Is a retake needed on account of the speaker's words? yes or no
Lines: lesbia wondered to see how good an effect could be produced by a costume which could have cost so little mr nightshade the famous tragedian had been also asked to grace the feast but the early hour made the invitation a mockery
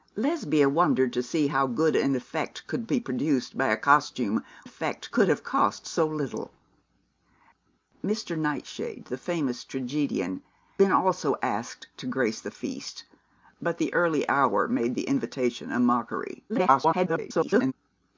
yes